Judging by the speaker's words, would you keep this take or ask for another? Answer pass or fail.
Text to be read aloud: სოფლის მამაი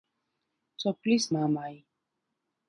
pass